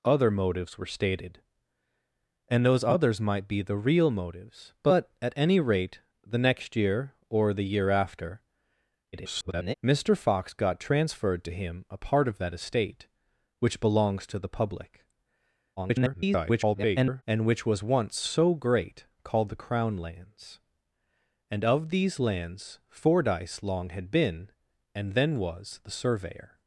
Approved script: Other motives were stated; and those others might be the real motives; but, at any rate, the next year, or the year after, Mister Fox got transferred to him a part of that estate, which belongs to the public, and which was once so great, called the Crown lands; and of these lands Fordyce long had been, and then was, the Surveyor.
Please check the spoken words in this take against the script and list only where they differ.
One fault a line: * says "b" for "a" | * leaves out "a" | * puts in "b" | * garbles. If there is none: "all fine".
* garbles
* garbles